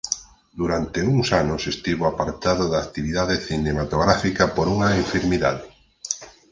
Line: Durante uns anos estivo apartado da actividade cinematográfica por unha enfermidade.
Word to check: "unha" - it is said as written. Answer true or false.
true